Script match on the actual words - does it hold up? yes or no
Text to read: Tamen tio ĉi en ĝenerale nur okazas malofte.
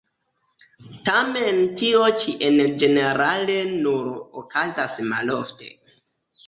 yes